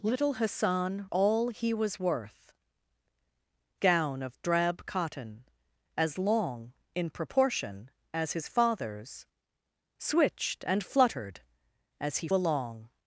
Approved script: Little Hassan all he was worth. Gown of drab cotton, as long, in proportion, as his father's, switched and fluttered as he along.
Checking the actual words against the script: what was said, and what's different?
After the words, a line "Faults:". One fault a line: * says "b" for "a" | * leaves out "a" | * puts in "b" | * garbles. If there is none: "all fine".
Little Hassan all he was worth. Gown of drab cotton, as long, in proportion, as his father's, switched and fluttered as he along.
Faults:
all fine